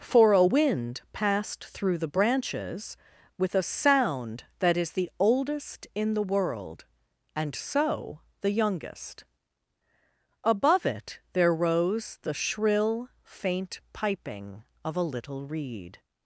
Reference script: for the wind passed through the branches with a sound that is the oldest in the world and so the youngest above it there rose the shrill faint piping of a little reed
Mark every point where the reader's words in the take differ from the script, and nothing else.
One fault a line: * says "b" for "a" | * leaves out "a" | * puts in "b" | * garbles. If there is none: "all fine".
* says "a" for "the"